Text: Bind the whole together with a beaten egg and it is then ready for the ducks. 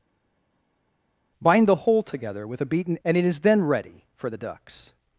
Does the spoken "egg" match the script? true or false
false